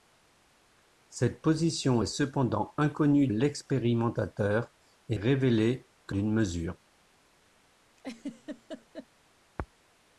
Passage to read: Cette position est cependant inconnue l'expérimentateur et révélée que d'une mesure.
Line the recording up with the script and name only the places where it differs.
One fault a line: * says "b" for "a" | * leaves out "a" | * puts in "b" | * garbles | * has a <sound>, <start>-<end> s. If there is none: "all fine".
* has a laugh, 8.0-9.1 s